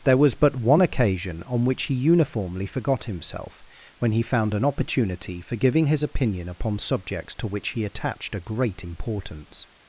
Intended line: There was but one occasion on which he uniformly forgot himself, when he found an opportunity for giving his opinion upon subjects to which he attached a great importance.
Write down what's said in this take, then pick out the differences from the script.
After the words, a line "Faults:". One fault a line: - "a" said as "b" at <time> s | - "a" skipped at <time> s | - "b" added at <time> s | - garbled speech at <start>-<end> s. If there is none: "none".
There was but one occasion on which he uniformly forgot himself, when he found an opportunity for giving his opinion upon subjects to which he attached a great importance.
Faults:
none